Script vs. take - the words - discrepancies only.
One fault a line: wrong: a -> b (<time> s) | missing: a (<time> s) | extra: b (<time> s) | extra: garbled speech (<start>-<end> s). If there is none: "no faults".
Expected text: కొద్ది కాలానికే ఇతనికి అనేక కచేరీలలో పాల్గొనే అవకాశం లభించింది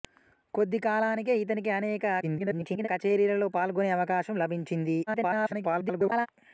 extra: garbled speech (2.2-2.9 s)
extra: garbled speech (5.1-6.3 s)